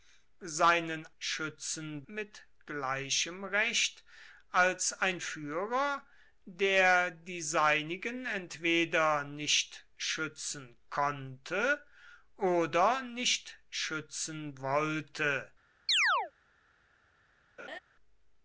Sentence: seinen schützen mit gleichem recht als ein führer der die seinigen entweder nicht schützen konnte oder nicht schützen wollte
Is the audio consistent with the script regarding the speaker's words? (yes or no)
yes